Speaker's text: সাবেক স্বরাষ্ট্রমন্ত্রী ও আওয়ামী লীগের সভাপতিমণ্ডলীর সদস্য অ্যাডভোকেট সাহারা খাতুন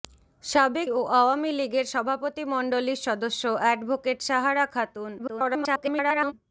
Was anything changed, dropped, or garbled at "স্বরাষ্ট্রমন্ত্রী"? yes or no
yes